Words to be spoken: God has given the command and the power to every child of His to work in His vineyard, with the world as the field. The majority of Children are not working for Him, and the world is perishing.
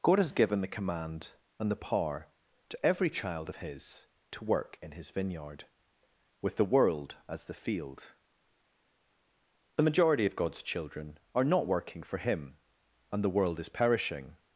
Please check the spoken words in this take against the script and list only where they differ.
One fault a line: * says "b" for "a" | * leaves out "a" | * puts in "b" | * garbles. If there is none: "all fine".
* puts in "God's"